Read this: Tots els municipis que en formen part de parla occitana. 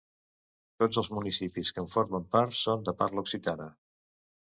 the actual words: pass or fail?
fail